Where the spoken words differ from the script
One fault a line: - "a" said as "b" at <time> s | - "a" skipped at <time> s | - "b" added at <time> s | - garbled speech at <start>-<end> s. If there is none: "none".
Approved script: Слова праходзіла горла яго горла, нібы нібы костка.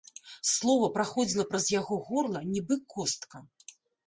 - "горла" said as "праз" at 1.5 s
- "нібы" skipped at 2.8 s